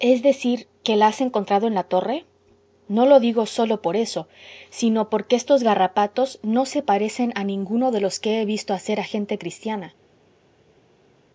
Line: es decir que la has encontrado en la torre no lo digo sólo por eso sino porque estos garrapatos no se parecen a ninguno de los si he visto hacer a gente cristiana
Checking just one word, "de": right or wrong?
right